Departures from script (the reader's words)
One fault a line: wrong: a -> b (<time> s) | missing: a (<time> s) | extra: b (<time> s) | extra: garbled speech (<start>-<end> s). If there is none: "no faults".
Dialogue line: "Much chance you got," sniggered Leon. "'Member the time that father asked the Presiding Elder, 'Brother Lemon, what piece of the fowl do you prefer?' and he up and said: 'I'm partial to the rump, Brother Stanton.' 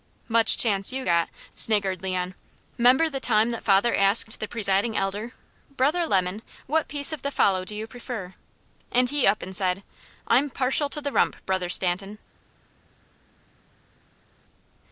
no faults